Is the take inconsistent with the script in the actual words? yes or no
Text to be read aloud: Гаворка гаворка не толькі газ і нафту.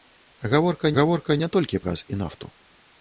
no